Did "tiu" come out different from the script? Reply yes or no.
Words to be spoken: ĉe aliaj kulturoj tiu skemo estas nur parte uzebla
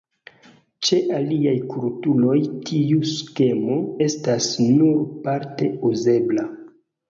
no